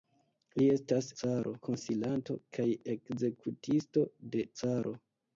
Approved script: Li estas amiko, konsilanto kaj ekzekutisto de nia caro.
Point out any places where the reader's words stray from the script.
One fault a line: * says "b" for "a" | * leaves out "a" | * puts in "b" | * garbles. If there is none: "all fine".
* says "caro" for "amiko"
* leaves out "nia"